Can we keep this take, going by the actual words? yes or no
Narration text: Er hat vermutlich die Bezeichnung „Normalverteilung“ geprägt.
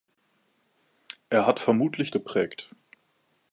no